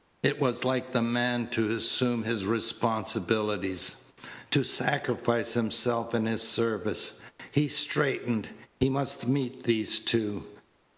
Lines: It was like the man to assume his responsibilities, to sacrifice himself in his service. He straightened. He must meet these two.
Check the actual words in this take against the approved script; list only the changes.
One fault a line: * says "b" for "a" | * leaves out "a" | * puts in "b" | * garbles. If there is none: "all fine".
all fine